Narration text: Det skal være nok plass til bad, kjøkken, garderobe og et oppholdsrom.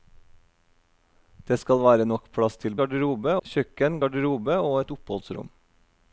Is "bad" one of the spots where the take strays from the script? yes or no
yes